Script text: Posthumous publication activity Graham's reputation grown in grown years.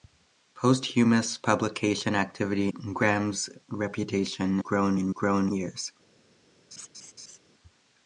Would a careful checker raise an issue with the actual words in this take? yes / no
no